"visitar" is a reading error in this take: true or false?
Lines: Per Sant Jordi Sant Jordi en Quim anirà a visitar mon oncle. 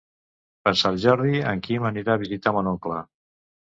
false